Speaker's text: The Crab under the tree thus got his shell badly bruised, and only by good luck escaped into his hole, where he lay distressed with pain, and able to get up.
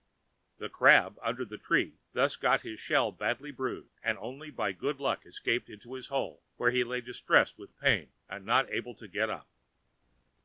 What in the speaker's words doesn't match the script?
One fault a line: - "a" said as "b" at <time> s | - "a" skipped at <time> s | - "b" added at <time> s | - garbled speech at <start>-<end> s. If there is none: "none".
- "not" added at 8.5 s